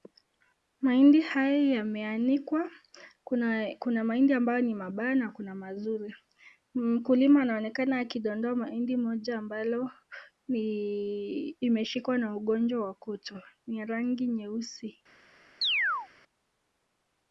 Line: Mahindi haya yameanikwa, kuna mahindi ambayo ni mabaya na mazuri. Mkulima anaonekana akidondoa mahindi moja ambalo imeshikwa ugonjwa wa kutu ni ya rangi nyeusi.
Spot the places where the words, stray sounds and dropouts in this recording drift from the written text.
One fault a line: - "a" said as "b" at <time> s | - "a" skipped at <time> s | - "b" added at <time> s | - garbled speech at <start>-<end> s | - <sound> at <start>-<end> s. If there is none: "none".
- "kuna" added at 5.3 s
- "na" added at 12.2 s
- chirp at 15.6-16.1 s